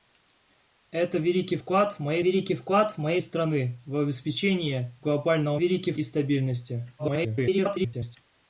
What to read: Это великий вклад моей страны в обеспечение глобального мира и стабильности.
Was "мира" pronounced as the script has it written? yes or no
no